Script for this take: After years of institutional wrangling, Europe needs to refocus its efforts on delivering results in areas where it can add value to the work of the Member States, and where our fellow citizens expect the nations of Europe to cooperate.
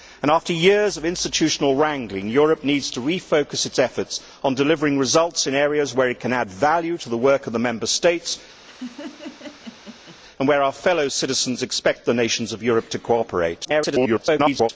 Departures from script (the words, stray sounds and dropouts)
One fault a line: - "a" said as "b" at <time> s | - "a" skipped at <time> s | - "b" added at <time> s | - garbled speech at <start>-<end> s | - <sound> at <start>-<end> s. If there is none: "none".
- laugh at 8.7-10.2 s
- garbled speech at 13.6-14.7 s